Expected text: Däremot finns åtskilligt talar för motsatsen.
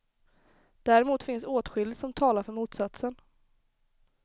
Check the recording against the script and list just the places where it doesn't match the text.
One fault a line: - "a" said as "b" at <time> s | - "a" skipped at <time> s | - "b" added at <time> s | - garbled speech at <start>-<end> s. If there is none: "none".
- "som" added at 2.0 s